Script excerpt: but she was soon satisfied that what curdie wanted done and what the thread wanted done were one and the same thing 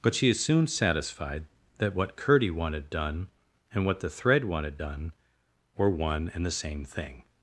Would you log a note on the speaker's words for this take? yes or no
yes